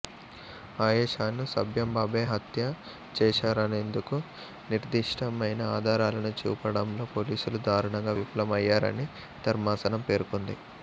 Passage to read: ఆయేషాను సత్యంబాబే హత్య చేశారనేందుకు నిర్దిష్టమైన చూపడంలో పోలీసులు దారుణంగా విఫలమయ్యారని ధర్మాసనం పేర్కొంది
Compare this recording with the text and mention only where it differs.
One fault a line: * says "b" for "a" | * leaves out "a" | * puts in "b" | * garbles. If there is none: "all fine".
* puts in "ఆధారాలను"